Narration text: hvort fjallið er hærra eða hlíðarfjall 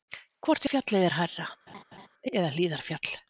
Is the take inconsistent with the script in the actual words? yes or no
no